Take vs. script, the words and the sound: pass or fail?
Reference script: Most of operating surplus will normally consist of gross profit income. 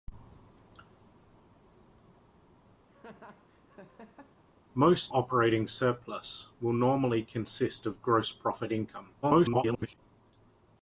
fail